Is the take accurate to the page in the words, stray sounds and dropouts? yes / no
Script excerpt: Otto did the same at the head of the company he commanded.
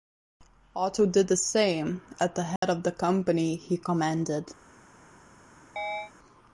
no